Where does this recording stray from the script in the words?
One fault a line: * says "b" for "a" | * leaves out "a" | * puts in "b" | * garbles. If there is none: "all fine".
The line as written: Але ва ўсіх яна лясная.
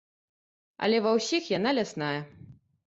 all fine